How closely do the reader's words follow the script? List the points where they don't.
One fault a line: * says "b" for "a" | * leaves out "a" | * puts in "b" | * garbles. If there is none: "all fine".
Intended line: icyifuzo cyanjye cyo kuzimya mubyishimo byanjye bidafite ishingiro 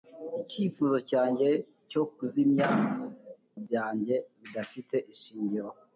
* leaves out "mubyishimo"